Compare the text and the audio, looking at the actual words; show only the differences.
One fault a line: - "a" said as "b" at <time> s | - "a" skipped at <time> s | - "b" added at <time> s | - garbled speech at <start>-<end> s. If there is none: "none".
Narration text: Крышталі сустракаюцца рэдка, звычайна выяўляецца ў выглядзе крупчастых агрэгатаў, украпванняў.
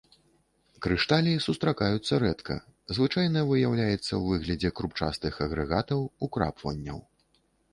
none